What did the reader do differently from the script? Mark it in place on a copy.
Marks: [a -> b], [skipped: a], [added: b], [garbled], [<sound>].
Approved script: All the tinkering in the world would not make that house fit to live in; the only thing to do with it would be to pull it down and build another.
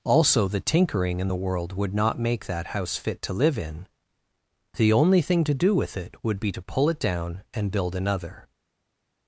[All -> Also] the tinkering in the world would not make that house fit to live in; the only thing to do with it would be to pull it down and build another.